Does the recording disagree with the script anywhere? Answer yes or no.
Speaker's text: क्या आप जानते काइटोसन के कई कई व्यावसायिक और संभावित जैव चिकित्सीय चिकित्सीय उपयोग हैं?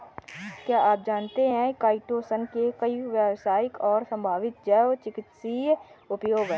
yes